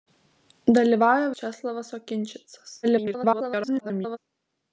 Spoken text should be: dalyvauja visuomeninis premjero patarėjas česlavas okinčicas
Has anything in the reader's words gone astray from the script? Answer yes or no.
yes